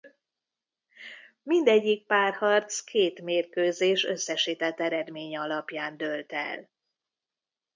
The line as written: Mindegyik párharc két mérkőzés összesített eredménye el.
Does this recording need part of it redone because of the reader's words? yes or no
yes